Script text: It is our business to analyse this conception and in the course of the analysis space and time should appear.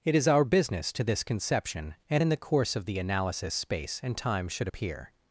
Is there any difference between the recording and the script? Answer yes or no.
yes